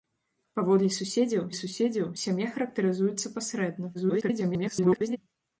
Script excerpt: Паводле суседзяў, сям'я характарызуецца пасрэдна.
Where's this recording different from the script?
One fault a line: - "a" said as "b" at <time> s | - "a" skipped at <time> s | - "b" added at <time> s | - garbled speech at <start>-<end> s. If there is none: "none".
- "суседзяў" added at 1.6 s
- garbled speech at 3.9-5.2 s